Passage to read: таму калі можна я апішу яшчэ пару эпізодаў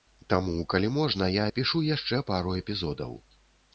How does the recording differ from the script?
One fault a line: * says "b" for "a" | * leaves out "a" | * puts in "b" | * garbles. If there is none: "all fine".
all fine